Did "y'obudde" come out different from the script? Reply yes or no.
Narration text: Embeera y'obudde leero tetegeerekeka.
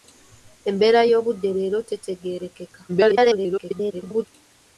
no